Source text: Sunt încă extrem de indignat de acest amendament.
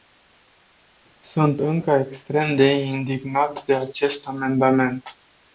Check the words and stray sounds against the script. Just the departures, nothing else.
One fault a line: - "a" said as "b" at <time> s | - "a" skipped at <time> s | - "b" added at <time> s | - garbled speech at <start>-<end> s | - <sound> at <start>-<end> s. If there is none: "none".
none